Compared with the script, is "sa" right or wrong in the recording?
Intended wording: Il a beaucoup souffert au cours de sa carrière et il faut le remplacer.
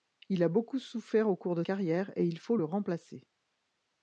wrong